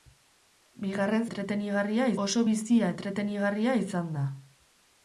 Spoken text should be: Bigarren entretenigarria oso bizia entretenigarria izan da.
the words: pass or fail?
pass